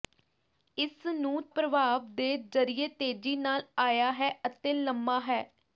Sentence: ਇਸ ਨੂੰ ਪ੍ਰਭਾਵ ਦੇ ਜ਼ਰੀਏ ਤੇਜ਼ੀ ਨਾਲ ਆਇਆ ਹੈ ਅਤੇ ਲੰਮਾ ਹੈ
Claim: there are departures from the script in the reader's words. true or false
false